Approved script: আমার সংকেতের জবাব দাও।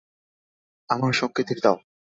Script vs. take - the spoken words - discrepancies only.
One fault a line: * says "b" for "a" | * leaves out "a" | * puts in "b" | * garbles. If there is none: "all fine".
* leaves out "জবাব"